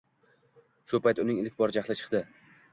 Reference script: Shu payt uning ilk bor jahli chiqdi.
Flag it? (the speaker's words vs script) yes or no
no